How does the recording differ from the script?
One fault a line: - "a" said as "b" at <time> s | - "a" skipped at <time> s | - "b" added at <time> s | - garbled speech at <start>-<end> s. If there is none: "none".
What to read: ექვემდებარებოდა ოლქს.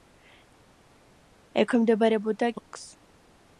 none